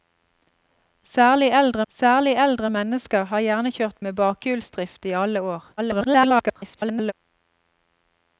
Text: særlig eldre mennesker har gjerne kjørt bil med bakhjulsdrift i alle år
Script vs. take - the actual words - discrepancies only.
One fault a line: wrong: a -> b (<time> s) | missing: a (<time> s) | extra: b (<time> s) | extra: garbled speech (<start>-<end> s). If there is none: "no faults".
extra: særlig eldre (1.9 s)
missing: bil (4.0 s)
extra: garbled speech (5.8-7.1 s)